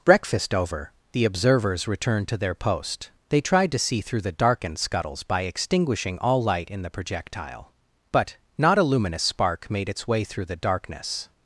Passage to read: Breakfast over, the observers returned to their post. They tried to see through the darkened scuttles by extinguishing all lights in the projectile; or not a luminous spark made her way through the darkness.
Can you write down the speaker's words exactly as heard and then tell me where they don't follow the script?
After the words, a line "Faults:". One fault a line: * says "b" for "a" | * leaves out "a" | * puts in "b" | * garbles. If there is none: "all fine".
Breakfast over, the observers returned to their post. They tried to see through the darkened scuttles by extinguishing all light in the projectile; but not a luminous spark made its way through the darkness.
Faults:
* says "light" for "lights"
* says "but" for "or"
* says "its" for "her"